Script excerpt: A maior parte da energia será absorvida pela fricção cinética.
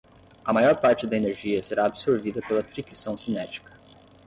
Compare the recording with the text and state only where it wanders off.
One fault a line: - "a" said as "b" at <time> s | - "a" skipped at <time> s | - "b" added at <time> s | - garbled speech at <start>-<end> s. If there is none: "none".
none